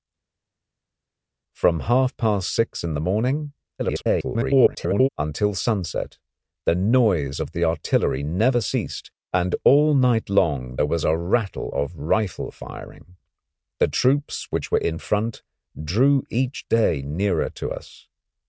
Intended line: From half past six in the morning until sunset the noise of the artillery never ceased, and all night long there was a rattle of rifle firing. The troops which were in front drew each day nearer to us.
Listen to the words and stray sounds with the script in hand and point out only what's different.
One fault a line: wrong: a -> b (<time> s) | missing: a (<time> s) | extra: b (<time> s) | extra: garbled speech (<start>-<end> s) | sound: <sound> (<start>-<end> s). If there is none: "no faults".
extra: garbled speech (3.8-5.1 s)